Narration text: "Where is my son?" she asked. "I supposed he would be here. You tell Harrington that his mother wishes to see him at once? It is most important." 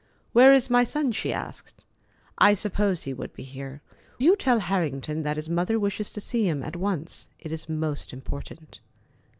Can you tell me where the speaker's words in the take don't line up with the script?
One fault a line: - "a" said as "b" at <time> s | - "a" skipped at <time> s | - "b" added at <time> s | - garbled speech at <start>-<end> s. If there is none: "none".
none